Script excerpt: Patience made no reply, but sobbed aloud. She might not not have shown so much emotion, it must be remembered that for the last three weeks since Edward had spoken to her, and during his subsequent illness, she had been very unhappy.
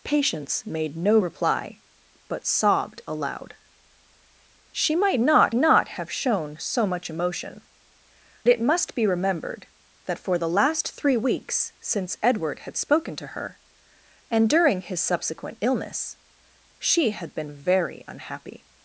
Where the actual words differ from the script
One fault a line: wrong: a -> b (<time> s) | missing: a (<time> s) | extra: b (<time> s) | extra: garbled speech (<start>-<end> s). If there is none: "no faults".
no faults